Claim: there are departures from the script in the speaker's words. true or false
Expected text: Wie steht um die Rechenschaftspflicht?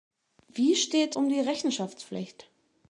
false